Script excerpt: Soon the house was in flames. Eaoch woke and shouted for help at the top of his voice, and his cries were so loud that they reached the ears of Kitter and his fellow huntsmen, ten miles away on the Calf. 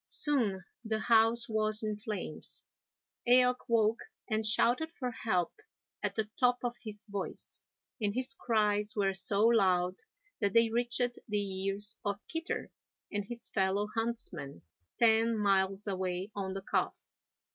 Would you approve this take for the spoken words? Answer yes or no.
yes